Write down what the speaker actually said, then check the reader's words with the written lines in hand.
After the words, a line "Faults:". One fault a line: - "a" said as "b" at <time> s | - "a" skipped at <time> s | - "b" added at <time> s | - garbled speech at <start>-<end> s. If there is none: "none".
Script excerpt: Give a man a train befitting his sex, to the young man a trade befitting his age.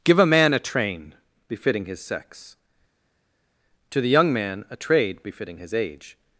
Give a man a train befitting his sex, to the young man a trade befitting his age.
Faults:
none